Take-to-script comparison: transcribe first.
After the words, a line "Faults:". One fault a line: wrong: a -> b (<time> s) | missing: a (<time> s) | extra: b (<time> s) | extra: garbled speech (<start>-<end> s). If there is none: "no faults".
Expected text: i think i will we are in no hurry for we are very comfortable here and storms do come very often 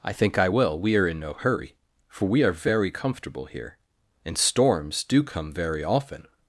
i think i will we are in no hurry for we are very comfortable here and storms do come very often
Faults:
no faults